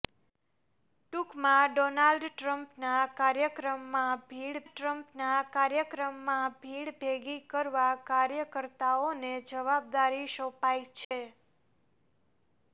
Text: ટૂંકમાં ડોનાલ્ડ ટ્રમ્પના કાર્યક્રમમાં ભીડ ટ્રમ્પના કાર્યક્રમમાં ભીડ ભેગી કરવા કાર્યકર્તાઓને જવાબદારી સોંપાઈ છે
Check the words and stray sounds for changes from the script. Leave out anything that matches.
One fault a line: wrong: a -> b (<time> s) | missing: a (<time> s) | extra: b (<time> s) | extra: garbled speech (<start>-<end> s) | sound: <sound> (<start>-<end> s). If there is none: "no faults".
sound: dropout (11.0-11.1 s)